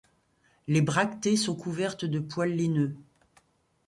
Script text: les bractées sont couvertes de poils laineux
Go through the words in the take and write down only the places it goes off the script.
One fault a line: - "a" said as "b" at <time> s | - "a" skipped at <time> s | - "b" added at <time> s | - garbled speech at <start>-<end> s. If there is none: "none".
none